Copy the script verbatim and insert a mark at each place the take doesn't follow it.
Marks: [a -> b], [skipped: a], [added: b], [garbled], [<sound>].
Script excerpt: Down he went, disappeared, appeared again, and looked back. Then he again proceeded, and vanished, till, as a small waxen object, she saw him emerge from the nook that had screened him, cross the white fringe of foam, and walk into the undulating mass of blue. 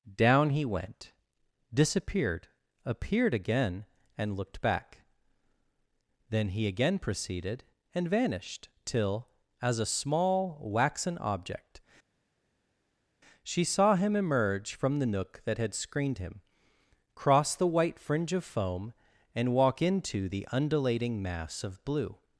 Down he went, disappeared, appeared again, and looked back. Then he again proceeded, and vanished, till, as a small waxen object, she saw him emerge from the nook that had screened him, cross the white fringe of foam, and walk into the undulating mass of blue.